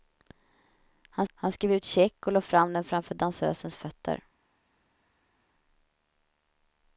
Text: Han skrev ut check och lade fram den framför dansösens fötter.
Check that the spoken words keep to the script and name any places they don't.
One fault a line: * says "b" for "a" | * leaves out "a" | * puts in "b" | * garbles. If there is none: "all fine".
* puts in "han"